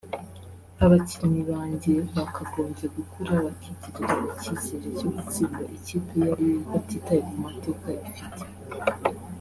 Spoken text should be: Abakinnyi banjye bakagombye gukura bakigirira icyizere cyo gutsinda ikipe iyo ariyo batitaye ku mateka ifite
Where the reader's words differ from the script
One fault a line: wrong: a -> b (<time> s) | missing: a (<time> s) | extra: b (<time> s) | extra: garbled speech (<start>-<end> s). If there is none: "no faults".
no faults